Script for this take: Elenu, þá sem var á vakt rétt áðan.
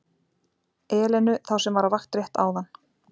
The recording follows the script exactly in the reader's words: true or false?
true